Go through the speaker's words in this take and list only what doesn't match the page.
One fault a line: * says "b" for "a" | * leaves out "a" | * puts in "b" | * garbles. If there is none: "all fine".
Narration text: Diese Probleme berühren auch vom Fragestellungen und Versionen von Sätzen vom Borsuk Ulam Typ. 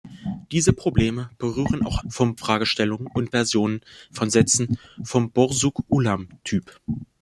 all fine